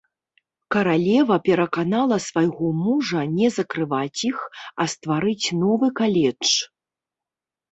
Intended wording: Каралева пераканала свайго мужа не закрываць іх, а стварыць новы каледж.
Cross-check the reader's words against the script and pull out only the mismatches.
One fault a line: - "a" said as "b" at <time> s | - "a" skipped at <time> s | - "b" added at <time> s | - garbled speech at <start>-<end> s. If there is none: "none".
none